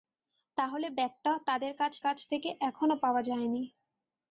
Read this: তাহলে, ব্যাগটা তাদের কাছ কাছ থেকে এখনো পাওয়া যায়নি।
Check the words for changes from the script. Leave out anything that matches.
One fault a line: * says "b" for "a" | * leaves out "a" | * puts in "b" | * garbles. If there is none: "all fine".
all fine